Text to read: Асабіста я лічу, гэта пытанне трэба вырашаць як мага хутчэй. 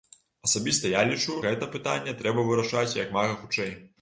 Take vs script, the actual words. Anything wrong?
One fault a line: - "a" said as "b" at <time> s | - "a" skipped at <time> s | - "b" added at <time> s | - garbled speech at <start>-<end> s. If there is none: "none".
none